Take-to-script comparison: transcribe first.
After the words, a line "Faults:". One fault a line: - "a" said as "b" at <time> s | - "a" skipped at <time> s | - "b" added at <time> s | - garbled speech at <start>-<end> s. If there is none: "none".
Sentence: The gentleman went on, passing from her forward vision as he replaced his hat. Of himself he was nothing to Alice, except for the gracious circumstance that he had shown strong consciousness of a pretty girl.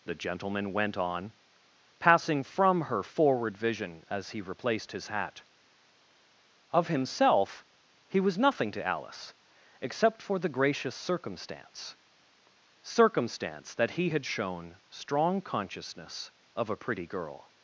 The gentleman went on, passing from her forward vision as he replaced his hat. Of himself he was nothing to Alice, except for the gracious circumstance circumstance that he had shown strong consciousness of a pretty girl.
Faults:
- "circumstance" added at 12.8 s